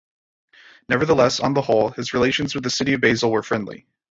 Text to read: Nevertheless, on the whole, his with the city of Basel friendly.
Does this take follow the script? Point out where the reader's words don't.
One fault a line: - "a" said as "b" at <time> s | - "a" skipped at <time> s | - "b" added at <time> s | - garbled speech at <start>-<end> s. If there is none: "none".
- "relations" added at 2.1 s
- "were" added at 3.3 s